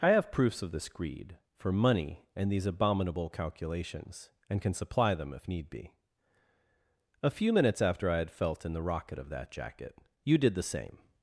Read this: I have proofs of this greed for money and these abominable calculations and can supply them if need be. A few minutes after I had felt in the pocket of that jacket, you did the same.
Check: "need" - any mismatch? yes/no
no